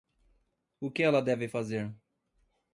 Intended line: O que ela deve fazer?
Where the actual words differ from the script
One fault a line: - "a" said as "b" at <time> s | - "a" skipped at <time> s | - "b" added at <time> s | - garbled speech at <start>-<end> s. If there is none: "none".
none